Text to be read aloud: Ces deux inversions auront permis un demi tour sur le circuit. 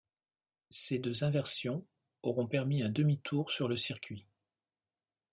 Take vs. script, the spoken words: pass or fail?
pass